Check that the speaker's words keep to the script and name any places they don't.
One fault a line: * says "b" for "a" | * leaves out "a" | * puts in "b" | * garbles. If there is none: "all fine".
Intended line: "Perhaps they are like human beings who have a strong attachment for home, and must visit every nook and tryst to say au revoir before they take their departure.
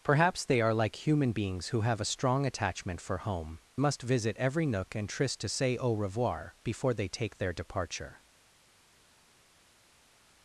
* leaves out "and"